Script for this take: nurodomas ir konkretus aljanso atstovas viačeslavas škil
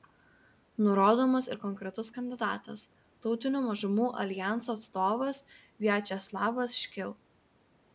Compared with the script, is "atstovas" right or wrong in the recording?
right